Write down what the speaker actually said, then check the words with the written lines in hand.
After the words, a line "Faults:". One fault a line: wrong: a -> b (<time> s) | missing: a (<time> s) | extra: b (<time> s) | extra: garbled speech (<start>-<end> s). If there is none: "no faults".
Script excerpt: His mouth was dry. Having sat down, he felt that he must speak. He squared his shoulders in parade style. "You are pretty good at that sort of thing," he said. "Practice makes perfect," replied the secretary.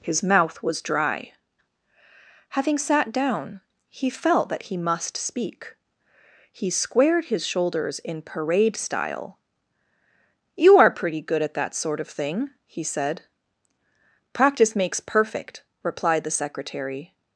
His mouth was dry. Having sat down, he felt that he must speak. He squared his shoulders in parade style. "You are pretty good at that sort of thing," he said. "Practice makes perfect," replied the secretary.
Faults:
no faults